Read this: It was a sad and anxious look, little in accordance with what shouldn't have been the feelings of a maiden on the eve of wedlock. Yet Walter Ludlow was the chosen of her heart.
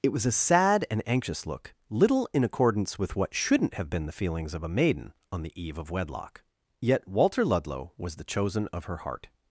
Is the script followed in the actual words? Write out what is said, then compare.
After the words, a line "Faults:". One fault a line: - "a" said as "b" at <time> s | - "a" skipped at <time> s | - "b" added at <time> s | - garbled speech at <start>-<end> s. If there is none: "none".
It was a sad and anxious look, little in accordance with what shouldn't have been the feelings of a maiden on the eve of wedlock. Yet Walter Ludlow was the chosen of her heart.
Faults:
none